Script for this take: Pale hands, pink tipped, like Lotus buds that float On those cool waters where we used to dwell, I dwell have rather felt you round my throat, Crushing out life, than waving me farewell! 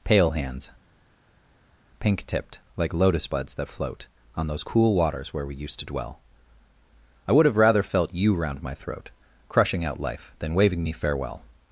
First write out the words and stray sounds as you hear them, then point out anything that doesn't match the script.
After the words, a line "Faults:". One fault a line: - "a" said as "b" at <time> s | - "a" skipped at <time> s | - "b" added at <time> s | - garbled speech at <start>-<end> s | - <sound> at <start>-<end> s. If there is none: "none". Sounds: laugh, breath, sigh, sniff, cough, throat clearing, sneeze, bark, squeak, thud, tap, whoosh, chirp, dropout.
Pale hands, pink tipped, like Lotus buds that float On those cool waters where we used to dwell, I would have rather felt you round my throat, Crushing out life, than waving me farewell!
Faults:
- "dwell" said as "would" at 7.3 s